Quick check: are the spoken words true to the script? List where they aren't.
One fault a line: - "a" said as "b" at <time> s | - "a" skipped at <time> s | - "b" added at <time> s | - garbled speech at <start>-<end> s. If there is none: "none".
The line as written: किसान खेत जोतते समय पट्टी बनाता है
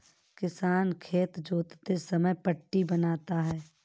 none